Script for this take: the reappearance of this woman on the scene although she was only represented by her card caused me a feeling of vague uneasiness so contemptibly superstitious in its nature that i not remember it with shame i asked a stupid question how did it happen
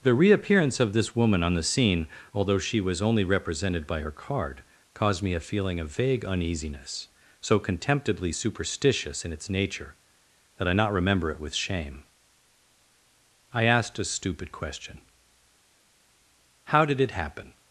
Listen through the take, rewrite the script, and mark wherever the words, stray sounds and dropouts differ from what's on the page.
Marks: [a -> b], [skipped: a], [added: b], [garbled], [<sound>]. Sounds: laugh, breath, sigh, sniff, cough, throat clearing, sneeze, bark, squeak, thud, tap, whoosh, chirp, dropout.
the reappearance of this woman on the scene although she was only represented by her card caused me a feeling of vague uneasiness so contemptibly superstitious in its nature that i not remember it with shame i asked a stupid question how did it happen